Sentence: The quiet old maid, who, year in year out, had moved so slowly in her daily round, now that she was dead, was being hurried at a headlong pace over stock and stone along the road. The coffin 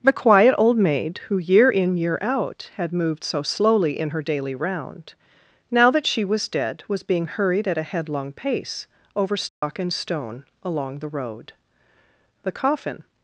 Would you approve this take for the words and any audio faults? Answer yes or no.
no